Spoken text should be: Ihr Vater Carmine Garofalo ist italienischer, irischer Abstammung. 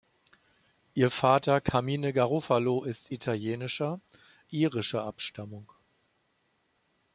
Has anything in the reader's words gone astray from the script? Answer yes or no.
no